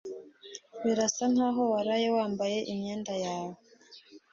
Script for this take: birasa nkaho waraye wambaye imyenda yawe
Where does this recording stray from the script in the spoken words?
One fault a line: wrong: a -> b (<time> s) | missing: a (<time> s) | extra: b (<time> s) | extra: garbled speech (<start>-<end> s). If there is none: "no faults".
no faults